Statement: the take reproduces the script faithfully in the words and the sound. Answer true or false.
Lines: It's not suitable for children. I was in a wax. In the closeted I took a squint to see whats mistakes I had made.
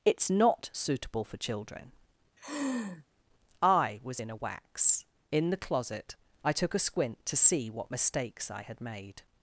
false